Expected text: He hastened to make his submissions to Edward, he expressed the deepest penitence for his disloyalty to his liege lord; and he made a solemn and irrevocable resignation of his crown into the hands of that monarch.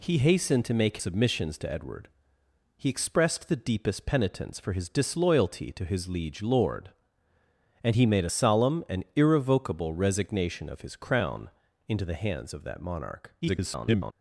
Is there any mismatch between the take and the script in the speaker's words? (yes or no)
yes